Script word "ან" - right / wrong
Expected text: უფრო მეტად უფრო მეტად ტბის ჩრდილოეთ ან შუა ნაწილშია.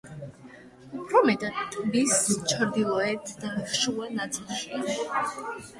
wrong